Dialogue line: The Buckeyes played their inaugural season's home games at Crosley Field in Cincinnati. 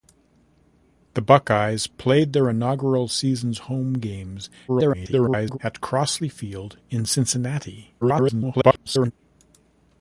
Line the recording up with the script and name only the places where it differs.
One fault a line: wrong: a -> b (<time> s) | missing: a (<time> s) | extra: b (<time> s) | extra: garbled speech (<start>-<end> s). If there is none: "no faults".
extra: garbled speech (4.7-5.6 s)
extra: garbled speech (8.0-9.1 s)